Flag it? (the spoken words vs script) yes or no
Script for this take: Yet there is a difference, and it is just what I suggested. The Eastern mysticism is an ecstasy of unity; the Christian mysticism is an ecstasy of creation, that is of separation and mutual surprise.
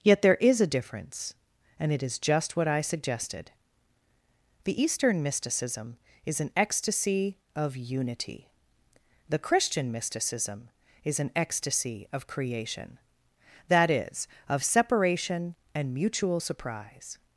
no